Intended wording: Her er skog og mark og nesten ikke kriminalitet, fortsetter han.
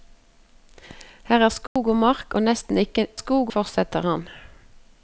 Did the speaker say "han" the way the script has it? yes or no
yes